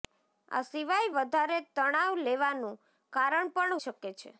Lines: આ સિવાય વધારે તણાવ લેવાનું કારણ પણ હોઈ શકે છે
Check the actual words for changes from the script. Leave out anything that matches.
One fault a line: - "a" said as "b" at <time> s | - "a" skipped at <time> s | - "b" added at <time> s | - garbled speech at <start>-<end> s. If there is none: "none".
- "હોઈ" skipped at 3.8 s